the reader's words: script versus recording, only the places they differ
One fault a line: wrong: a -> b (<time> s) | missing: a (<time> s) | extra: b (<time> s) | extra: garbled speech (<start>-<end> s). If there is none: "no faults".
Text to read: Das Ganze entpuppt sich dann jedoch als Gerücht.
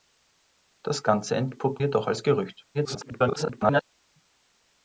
missing: sich dann (1.8 s)
extra: garbled speech (2.7-3.8 s)